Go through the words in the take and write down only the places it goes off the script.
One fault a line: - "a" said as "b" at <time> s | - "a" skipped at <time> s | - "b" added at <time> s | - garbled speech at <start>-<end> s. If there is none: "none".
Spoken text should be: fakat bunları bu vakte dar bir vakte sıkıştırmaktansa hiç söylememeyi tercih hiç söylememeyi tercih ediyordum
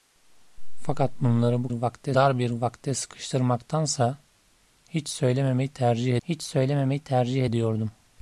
none